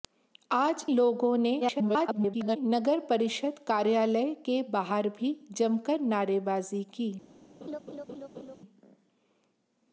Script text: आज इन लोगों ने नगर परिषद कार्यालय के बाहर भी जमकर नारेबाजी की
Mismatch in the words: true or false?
true